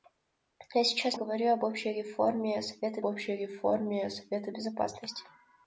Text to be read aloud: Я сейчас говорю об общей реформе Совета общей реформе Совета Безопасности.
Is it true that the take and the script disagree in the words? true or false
false